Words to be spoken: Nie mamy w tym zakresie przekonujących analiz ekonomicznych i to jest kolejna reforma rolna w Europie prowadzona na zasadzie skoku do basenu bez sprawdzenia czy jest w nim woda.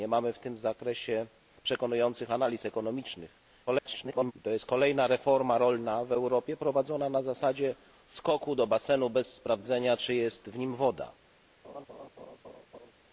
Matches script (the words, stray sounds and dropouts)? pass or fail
fail